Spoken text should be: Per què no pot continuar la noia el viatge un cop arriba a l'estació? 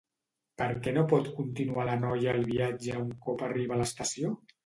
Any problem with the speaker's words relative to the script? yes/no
no